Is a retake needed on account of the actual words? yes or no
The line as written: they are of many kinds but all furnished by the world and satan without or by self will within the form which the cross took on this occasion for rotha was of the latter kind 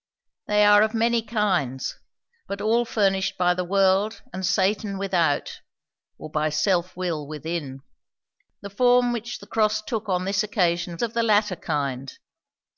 yes